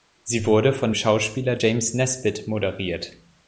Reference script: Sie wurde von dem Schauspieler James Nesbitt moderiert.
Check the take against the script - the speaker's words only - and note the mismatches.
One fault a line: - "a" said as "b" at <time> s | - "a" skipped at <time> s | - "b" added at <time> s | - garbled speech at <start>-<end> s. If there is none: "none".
- "dem" skipped at 0.9 s